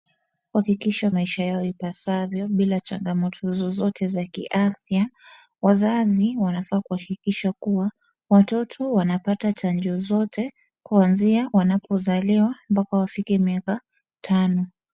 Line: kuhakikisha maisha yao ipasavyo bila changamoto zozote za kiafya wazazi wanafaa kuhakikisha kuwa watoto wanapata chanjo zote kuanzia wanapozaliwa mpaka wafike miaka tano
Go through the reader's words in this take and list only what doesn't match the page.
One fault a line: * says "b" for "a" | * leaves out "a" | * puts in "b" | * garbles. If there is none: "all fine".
all fine